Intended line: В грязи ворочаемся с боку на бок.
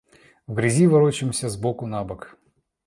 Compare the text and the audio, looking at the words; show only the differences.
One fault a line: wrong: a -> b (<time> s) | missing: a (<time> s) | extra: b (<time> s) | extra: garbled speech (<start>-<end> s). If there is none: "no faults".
no faults